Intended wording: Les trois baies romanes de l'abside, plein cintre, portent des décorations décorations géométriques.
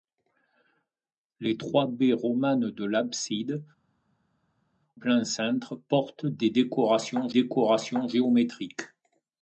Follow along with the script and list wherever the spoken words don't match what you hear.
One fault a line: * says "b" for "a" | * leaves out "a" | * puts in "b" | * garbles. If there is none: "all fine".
all fine